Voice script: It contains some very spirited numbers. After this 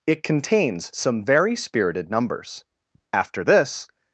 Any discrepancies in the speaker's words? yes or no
no